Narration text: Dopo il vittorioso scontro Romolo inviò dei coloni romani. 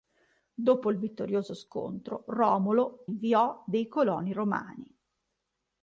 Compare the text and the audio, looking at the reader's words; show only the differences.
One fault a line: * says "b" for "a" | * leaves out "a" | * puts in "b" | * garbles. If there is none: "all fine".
all fine